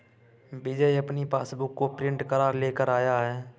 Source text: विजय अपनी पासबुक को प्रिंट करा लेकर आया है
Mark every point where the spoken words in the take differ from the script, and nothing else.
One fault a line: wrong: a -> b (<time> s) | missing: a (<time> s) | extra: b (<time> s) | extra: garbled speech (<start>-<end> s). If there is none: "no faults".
no faults